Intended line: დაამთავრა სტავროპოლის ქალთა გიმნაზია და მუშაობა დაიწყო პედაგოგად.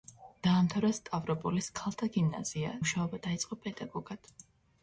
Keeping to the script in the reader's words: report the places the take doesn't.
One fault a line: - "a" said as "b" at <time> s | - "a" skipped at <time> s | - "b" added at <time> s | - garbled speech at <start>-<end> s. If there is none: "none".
- "და" skipped at 2.8 s